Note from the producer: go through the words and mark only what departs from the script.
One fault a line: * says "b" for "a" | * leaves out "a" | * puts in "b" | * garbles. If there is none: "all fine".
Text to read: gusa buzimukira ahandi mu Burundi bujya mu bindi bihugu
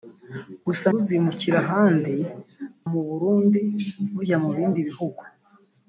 all fine